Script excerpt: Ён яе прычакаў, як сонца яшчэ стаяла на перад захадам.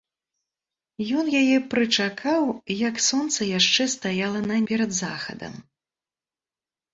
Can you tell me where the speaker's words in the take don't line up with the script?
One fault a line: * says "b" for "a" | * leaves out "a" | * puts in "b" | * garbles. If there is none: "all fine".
all fine